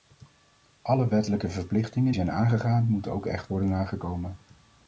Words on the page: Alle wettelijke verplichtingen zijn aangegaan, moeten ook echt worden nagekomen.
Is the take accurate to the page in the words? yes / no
yes